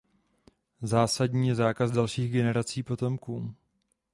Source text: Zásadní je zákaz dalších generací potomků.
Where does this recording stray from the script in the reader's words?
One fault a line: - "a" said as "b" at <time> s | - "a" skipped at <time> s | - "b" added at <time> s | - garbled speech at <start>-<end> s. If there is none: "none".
none